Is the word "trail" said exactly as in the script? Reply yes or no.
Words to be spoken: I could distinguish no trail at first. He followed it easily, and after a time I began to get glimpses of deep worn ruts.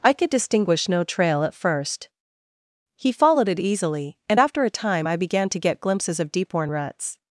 yes